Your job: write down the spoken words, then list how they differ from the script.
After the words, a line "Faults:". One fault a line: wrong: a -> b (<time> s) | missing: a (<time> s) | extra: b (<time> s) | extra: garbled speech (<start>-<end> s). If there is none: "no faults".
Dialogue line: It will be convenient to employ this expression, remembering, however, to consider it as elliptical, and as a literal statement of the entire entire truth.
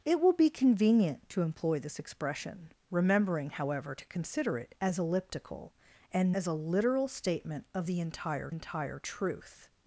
It will be convenient to employ this expression, remembering, however, to consider it as elliptical, and as a literal statement of the entire entire truth.
Faults:
no faults